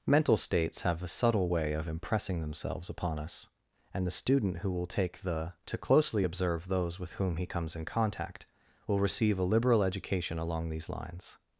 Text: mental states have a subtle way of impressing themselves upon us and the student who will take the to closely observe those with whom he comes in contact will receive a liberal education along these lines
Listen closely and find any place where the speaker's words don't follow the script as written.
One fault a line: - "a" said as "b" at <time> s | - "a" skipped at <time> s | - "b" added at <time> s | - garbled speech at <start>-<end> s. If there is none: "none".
none